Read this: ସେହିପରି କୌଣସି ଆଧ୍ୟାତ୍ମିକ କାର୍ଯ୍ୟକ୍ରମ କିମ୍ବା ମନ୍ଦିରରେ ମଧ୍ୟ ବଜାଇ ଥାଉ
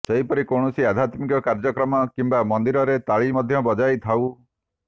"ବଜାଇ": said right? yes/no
yes